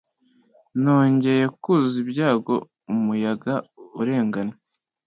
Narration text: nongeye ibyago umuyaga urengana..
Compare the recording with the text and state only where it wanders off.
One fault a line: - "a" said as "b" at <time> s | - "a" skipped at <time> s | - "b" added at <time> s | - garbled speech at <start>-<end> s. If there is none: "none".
- "kuzuza" added at 1.6 s